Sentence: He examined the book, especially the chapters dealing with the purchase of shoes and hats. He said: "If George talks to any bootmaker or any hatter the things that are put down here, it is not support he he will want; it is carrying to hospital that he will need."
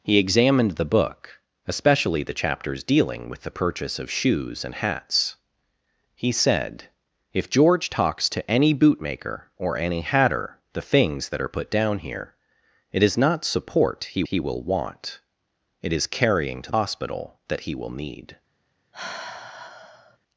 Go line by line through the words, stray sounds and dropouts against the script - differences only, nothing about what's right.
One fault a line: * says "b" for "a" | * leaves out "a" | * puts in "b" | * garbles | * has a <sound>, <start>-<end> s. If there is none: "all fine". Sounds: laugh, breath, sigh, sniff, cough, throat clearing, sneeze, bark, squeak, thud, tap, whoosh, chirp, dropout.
* has a sigh, 18.9-20.2 s